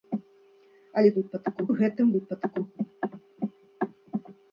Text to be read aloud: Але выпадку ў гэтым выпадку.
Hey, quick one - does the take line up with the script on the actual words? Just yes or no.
yes